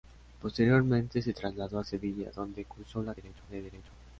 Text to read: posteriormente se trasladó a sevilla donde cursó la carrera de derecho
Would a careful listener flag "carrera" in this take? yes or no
yes